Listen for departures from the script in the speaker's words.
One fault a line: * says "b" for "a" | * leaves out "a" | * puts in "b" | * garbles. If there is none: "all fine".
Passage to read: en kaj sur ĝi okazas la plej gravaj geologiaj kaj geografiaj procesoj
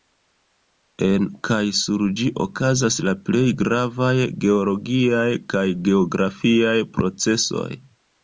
all fine